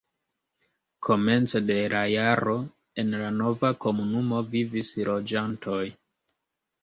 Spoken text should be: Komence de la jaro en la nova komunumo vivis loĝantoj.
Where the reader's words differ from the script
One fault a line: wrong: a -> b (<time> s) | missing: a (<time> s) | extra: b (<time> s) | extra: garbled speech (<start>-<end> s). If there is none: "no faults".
no faults